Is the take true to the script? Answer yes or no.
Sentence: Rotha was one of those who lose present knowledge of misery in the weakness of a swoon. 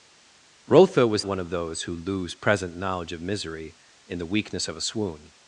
yes